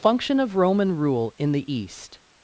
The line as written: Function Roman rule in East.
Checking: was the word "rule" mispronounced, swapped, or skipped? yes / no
no